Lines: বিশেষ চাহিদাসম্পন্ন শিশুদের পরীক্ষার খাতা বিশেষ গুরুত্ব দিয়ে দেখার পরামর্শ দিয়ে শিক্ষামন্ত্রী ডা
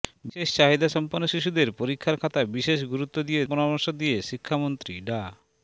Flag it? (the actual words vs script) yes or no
yes